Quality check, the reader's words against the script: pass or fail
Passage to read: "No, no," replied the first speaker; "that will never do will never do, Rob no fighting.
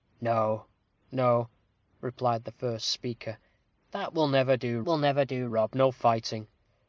pass